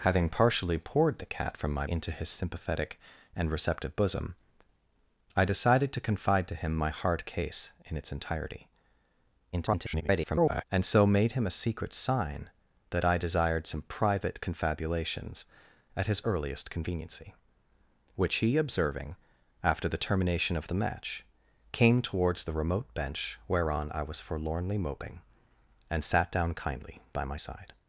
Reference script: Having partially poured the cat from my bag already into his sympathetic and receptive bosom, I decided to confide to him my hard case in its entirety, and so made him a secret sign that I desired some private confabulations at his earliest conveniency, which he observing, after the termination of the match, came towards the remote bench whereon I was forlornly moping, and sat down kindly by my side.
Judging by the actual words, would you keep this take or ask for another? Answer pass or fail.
fail